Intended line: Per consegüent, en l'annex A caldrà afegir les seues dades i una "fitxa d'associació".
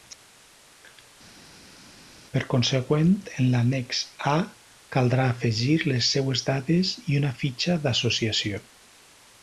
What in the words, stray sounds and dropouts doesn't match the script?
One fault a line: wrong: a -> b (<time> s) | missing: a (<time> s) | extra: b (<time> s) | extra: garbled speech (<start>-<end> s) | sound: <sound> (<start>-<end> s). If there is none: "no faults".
no faults